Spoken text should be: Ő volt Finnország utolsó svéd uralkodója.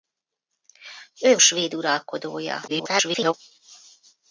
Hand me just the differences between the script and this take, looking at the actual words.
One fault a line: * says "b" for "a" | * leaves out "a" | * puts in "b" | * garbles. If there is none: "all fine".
* leaves out "volt Finnország utolsó"
* garbles